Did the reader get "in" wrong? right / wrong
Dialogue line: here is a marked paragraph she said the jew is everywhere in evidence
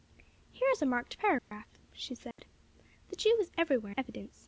wrong